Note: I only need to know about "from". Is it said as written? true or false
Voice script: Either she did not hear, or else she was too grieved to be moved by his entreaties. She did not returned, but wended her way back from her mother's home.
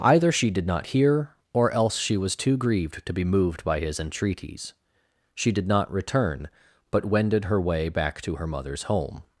false